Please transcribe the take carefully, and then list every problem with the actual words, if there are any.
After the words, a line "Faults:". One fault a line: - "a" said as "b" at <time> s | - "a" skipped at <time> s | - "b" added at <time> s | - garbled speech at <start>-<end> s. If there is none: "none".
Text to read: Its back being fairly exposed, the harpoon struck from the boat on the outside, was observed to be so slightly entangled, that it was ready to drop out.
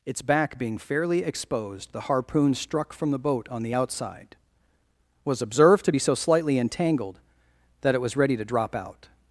Its back being fairly exposed, the harpoon struck from the boat on the outside, was observed to be so slightly entangled, that it was ready to drop out.
Faults:
none